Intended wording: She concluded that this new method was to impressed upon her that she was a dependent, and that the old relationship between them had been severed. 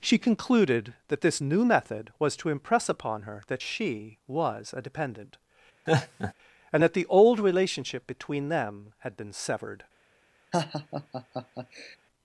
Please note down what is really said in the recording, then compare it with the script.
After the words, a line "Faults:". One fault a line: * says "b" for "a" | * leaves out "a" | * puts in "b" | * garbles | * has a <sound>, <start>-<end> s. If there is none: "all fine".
She concluded that this new method was to impress upon her that she was a dependent, and that the old relationship between them had been severed.
Faults:
* says "impress" for "impressed"
* has a laugh, 5.9-6.3 s
* has a laugh, 10.5-12.0 s